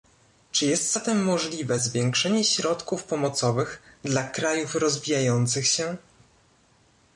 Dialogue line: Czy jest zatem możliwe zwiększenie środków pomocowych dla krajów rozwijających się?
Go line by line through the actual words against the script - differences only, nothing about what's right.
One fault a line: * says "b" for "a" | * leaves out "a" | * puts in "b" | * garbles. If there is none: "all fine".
all fine